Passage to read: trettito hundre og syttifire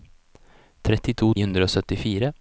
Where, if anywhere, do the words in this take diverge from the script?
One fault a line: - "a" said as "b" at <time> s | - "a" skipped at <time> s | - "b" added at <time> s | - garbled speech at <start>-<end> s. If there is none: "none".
none